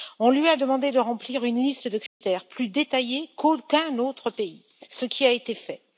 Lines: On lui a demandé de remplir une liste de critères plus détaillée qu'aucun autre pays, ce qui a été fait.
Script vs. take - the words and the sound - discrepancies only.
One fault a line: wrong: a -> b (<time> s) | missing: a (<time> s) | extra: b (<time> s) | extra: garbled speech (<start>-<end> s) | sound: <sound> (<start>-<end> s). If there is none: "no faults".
sound: dropout (2.1-2.2 s)